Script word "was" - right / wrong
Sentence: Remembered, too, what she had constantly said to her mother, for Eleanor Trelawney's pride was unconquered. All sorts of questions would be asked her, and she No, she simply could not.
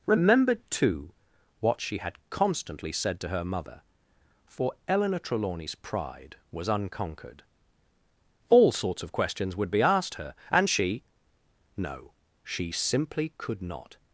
right